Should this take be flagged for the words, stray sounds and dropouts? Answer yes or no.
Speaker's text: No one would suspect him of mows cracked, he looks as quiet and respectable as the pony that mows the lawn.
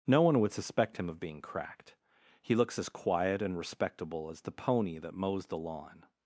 yes